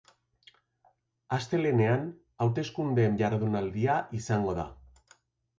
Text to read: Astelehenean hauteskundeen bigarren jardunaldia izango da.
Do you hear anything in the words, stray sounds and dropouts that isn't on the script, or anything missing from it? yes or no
yes